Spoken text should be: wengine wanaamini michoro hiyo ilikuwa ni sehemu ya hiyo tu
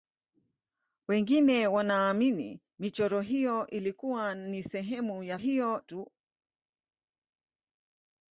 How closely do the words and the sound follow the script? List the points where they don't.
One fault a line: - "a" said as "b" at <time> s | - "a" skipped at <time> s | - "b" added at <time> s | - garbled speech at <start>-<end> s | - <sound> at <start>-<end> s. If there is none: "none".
none